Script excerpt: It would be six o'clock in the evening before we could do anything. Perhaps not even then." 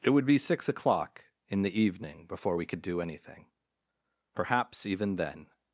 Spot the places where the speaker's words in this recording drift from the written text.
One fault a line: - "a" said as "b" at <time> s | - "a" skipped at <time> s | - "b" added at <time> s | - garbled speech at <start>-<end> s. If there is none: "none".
- "not" skipped at 4.8 s